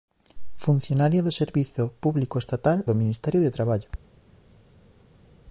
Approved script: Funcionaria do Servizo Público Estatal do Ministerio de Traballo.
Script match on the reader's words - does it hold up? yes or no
yes